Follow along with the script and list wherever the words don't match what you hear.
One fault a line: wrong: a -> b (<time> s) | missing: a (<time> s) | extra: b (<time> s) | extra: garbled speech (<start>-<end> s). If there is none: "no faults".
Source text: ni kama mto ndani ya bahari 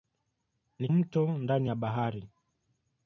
missing: kama (0.9 s)